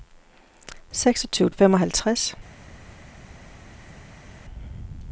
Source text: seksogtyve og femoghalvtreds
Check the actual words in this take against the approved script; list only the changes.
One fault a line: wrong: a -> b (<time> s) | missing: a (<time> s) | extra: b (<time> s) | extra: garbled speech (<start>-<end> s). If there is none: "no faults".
no faults